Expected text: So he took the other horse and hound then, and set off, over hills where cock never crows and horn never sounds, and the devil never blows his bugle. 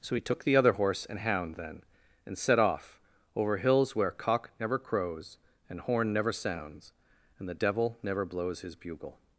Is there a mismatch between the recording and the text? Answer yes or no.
no